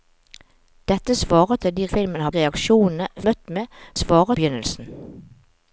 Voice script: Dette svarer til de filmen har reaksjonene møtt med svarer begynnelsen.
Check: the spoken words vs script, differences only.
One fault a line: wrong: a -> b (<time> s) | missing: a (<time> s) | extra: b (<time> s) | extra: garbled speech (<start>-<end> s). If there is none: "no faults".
no faults